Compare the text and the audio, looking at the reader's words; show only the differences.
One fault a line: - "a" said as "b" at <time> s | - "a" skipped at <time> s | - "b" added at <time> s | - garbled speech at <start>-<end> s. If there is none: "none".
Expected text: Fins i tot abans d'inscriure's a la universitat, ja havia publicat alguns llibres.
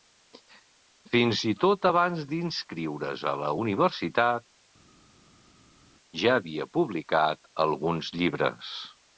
none